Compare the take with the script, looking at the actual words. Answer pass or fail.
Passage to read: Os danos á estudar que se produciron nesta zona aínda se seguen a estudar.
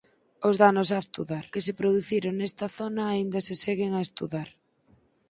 pass